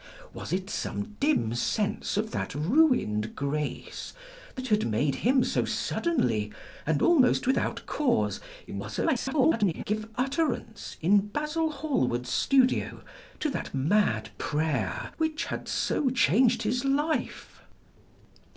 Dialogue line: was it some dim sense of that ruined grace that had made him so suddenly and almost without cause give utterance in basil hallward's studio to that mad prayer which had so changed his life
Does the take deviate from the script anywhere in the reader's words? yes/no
yes